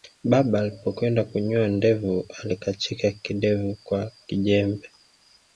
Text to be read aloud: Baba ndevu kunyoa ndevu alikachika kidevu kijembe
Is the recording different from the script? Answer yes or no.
yes